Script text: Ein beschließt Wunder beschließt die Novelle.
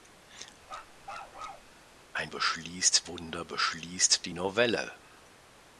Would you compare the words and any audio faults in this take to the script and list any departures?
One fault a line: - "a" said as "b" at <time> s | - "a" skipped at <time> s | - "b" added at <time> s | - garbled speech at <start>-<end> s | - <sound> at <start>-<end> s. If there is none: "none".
- bark at 0.6-1.7 s